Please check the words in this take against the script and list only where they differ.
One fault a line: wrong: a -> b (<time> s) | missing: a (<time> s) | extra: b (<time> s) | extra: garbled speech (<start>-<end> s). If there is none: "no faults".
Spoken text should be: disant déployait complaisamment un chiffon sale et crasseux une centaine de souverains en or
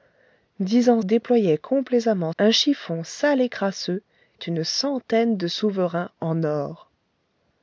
no faults